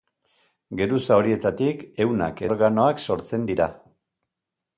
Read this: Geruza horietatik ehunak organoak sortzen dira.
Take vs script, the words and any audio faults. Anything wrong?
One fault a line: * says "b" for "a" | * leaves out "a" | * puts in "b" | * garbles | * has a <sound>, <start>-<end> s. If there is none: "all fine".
all fine